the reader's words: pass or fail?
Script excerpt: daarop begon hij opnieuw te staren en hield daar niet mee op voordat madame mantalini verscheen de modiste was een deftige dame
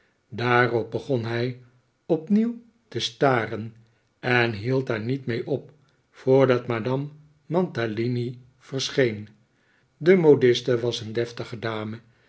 pass